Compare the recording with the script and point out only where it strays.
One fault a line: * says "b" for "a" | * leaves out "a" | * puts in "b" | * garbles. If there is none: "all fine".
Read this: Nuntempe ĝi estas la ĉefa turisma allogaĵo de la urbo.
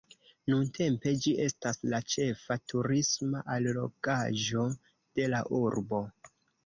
all fine